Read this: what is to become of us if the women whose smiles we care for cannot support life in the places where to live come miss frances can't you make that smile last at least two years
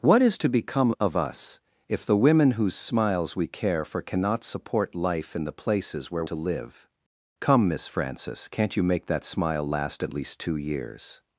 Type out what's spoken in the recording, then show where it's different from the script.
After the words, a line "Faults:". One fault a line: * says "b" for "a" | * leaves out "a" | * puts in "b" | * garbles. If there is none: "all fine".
what is to become of us if the women whose smiles we care for cannot support life in the places where to live come miss frances can't you make that smile last at least two years
Faults:
all fine